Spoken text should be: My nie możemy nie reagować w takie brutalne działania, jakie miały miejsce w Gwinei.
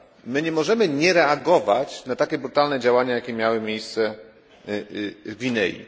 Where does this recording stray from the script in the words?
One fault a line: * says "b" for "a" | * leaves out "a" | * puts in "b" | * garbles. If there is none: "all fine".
* says "na" for "w"